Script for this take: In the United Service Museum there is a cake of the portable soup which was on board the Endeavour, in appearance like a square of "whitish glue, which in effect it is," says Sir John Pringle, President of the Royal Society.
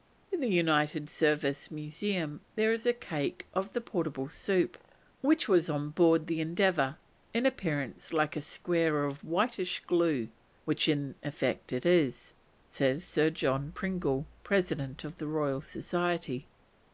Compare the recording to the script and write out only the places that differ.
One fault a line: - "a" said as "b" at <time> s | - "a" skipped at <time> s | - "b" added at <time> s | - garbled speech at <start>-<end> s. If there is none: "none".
none